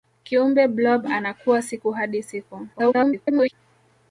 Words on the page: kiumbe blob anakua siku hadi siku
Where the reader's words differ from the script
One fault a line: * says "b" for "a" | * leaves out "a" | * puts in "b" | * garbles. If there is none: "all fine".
* garbles